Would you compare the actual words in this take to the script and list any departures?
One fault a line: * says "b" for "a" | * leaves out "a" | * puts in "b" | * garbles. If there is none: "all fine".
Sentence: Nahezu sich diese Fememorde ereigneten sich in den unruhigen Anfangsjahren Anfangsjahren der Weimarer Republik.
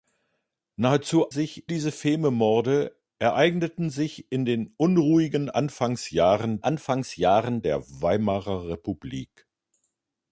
all fine